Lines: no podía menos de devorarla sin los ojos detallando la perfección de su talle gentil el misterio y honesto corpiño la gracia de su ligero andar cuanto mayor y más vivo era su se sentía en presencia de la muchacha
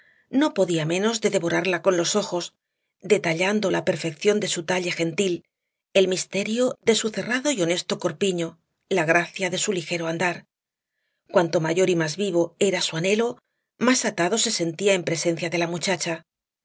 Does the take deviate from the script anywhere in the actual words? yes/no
yes